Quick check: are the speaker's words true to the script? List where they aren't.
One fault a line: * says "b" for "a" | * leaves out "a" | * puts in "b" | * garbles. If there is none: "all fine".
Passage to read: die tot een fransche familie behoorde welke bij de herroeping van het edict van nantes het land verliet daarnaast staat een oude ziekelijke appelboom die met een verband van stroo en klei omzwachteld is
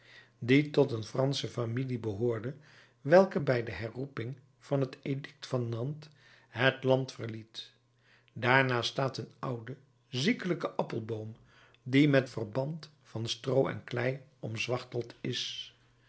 * leaves out "een"